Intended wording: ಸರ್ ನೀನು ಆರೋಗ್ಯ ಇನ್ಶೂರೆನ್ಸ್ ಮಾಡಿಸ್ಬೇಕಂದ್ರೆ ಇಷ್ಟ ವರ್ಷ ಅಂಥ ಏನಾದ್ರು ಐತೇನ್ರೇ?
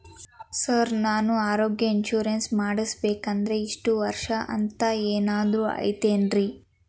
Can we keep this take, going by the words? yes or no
no